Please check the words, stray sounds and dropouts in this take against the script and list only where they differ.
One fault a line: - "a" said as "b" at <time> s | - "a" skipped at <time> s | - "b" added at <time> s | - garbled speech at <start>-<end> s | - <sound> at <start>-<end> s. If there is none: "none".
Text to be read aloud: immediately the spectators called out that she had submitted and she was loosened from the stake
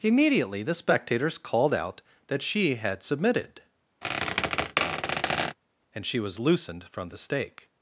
- squeak at 4.0-5.6 s